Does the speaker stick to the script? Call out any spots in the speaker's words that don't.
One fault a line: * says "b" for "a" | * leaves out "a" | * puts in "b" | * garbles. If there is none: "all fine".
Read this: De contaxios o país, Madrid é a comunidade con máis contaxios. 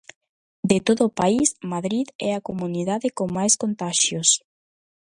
* says "todo" for "contaxios"